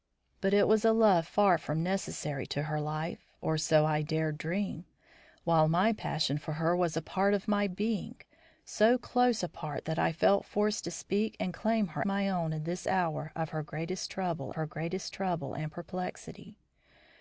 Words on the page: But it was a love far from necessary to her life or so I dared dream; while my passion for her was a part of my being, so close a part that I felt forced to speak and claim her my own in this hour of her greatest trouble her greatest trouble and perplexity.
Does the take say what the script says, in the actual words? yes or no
yes